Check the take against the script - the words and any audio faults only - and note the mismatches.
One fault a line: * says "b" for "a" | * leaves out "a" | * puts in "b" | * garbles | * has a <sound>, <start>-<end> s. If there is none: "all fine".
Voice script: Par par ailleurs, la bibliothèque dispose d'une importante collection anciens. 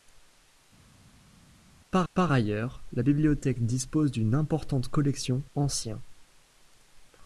all fine